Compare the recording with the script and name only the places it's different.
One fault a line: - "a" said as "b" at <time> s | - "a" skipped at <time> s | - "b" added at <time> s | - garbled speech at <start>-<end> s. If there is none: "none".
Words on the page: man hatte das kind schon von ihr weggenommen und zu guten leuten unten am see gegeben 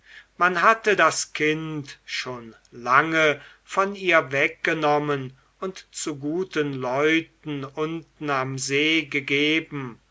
- "lange" added at 2.7 s